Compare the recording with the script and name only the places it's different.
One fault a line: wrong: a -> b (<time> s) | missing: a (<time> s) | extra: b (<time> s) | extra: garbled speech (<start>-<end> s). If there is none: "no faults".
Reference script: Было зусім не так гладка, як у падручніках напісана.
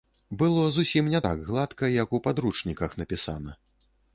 no faults